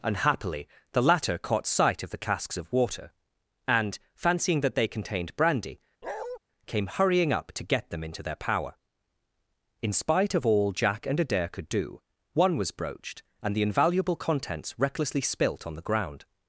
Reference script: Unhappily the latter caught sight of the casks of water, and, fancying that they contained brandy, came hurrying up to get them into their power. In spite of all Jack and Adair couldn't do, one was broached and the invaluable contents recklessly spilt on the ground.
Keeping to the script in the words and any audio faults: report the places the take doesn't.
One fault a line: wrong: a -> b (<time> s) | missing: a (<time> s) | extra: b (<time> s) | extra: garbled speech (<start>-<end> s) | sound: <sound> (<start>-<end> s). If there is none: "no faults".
sound: bark (6.0-6.4 s)
wrong: couldn't -> could (11.5 s)